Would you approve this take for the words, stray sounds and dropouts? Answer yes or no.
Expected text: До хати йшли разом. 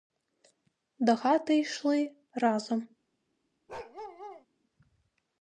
no